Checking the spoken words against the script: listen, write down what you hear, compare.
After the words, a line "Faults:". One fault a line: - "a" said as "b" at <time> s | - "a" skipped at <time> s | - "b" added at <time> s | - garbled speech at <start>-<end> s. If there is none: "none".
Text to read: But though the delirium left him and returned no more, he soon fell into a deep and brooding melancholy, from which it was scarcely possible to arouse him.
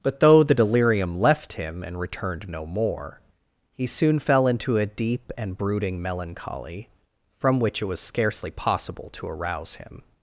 But though the delirium left him and returned no more, he soon fell into a deep and brooding melancholy, from which it was scarcely possible to arouse him.
Faults:
none